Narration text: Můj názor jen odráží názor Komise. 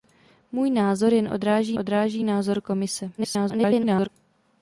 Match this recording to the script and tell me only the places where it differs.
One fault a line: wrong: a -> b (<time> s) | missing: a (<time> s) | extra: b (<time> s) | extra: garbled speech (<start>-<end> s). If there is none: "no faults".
extra: odráží (1.8 s)
extra: garbled speech (3.2-4.1 s)